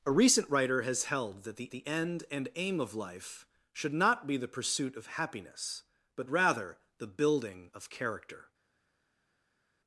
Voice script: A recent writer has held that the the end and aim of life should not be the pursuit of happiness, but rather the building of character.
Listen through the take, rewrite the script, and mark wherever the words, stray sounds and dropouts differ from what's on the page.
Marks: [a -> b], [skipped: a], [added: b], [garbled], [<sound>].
A recent writer has held that the the end and aim of life should not be the pursuit of happiness, but rather the building of character.